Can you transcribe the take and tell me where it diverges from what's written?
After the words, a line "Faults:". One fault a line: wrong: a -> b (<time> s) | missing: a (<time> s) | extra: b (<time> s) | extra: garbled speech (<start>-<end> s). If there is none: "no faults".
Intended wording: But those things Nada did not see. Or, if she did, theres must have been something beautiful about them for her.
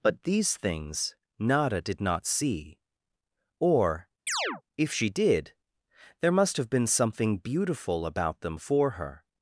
But these things Nada did not see. Or, if she did, there must have been something beautiful about them for her.
Faults:
wrong: those -> these (0.2 s)
wrong: theres -> there (6.2 s)